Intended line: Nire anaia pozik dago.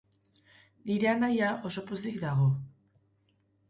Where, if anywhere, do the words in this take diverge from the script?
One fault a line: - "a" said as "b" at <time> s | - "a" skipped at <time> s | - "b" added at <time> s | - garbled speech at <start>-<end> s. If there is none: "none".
- "oso" added at 1.7 s